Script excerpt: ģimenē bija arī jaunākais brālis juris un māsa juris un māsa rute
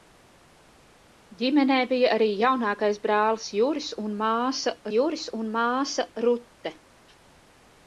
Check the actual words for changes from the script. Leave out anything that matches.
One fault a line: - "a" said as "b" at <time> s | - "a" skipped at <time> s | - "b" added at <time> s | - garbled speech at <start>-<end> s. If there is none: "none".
none